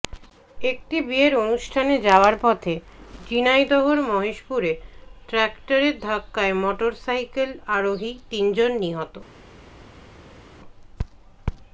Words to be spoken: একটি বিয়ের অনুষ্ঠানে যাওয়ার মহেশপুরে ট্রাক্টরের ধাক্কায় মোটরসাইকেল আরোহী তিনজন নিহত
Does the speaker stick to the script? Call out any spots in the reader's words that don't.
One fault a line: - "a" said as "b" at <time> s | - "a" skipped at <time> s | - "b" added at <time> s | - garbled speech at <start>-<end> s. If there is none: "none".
- "পথে ঝিনাইদহের" added at 2.4 s